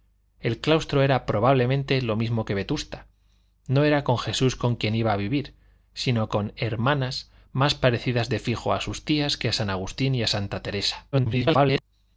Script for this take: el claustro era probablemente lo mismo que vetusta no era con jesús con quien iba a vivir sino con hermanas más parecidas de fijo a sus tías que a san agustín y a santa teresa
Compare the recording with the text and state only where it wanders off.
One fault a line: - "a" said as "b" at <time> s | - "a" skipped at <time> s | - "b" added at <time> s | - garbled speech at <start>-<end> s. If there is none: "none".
- garbled speech at 11.1-11.8 s